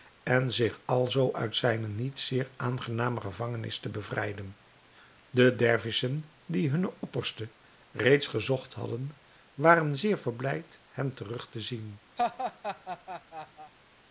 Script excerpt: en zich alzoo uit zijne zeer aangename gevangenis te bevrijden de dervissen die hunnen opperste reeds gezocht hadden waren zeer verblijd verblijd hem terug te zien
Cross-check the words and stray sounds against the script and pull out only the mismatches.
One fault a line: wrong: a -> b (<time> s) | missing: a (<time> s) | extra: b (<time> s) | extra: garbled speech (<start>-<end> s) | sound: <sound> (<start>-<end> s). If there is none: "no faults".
extra: niet (1.9 s)
missing: verblijd (10.8 s)
sound: laugh (12.2-13.7 s)